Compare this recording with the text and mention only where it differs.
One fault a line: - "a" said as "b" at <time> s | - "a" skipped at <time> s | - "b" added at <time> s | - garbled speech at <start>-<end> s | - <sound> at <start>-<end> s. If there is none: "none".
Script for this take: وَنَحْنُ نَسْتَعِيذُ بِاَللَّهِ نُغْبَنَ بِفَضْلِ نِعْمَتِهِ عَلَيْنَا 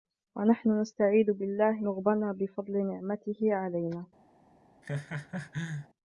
- laugh at 4.8-5.9 s